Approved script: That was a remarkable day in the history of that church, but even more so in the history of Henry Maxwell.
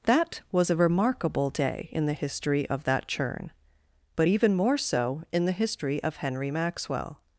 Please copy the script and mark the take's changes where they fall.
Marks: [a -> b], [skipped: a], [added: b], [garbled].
That was a remarkable day in the history of that [church, -> churn] but even more so in the history of Henry Maxwell.